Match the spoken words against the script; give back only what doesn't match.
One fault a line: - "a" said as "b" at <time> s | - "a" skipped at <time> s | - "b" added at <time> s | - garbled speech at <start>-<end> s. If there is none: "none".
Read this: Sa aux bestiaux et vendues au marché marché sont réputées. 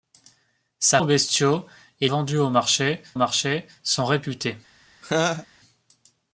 none